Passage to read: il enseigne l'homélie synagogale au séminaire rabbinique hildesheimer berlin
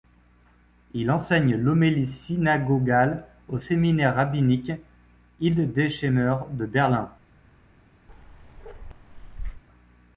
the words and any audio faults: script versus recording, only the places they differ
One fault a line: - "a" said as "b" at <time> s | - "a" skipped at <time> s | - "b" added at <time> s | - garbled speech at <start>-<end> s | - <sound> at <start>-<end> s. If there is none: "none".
- "de" added at 6.5 s
- bark at 8.1-9.6 s